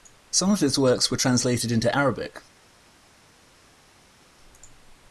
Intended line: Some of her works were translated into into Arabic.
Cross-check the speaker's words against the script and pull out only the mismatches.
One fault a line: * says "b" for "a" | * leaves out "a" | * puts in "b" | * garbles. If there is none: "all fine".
* says "his" for "her"
* leaves out "into"